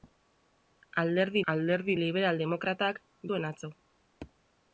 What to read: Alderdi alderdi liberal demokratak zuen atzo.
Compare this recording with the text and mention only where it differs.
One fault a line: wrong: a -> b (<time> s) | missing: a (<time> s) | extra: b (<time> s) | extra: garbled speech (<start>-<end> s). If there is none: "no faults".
no faults